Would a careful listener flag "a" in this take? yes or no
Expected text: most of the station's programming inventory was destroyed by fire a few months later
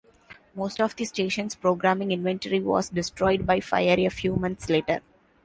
no